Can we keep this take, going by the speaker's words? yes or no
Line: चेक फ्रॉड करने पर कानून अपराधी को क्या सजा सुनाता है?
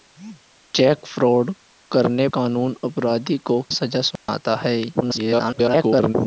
no